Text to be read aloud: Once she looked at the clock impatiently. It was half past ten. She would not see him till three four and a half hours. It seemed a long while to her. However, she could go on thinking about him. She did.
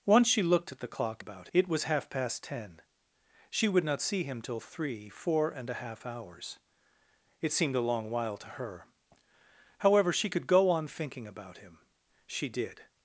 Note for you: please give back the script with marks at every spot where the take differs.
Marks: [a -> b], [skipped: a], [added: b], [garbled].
Once she looked at the clock [impatiently. -> about] It was half past ten. She would not see him till three four and a half hours. It seemed a long while to her. However, she could go on thinking about him. She did.